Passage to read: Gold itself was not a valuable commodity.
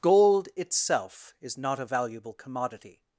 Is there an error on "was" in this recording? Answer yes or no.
yes